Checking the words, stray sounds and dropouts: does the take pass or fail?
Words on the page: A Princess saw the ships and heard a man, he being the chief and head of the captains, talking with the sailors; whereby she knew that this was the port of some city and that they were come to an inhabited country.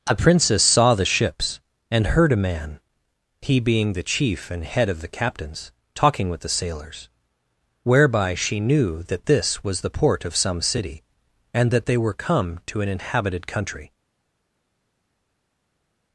pass